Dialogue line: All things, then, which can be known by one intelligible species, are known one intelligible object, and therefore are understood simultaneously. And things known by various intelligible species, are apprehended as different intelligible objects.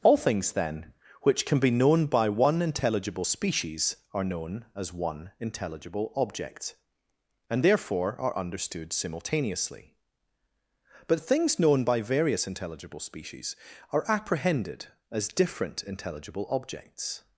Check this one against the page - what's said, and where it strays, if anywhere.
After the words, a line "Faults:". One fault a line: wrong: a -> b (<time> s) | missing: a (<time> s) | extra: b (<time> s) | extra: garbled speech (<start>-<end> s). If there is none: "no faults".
All things, then, which can be known by one intelligible species, are known as one intelligible object, and therefore are understood simultaneously. But things known by various intelligible species, are apprehended as different intelligible objects.
Faults:
extra: as (4.7 s)
wrong: And -> But (11.1 s)